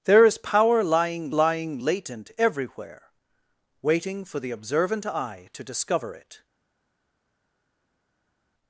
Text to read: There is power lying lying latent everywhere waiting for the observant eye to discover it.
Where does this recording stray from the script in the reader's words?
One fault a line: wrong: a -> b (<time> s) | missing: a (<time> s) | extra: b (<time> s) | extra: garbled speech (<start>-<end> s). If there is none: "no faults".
no faults